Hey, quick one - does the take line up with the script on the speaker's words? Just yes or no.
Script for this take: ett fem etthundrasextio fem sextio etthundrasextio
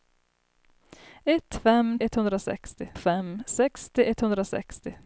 yes